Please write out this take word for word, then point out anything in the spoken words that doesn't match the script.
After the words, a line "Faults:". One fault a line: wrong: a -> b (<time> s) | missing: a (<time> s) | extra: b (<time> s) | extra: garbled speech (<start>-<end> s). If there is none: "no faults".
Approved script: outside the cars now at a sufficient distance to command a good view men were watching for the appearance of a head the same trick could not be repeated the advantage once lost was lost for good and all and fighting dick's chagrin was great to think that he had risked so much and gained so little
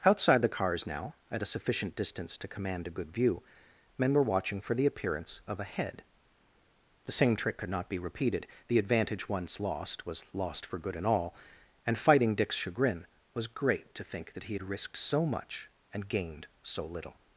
outside the cars now at a sufficient distance to command a good view men were watching for the appearance of a head the same trick could not be repeated the advantage once lost was lost for good and all and fighting dick's chagrin was great to think that he had risked so much and gained so little
Faults:
no faults